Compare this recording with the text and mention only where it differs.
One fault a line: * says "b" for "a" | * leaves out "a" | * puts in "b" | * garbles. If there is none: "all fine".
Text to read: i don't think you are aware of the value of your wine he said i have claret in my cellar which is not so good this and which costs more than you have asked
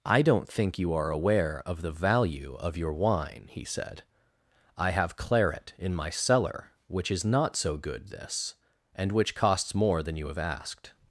all fine